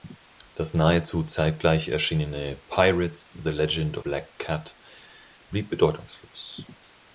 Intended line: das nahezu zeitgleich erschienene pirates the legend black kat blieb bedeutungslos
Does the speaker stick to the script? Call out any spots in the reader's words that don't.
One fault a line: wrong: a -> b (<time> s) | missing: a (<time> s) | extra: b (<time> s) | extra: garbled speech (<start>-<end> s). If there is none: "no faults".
no faults